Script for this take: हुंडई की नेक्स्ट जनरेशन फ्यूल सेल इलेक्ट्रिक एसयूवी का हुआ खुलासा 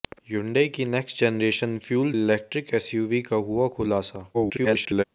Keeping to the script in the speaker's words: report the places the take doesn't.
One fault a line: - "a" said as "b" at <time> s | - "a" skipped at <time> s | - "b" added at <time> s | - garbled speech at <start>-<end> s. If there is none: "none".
- "सेल" skipped at 2.1 s
- garbled speech at 4.3-5.0 s